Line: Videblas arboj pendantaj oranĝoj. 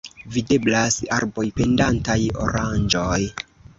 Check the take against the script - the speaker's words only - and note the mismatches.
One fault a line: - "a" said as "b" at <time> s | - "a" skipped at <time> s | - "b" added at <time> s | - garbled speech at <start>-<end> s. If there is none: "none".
none